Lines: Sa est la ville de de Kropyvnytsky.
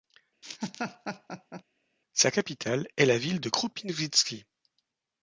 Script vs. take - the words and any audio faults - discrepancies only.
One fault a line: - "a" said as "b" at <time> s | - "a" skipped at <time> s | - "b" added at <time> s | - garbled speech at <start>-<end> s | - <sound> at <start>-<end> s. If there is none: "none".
- laugh at 0.4-1.6 s
- "capitale" added at 2.3 s
- "de" skipped at 3.5 s